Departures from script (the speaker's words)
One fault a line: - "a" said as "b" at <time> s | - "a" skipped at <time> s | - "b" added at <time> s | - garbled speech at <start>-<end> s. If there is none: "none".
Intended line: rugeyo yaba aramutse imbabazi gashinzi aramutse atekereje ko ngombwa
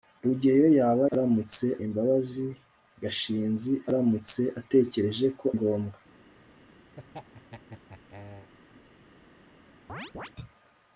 none